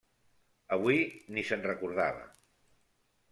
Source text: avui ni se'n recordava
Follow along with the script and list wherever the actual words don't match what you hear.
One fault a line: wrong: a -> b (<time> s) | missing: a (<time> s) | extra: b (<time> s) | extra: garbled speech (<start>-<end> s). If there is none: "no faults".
no faults